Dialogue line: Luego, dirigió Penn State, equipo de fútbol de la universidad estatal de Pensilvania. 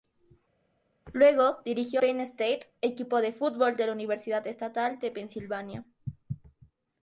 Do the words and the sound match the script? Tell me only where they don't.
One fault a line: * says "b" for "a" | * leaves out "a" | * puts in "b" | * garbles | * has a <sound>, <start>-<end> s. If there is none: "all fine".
all fine